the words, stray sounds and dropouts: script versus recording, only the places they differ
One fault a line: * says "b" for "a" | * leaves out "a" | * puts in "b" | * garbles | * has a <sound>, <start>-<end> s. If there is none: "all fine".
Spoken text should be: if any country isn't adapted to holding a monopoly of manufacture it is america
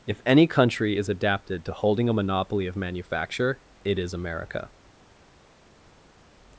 * says "is" for "isn't"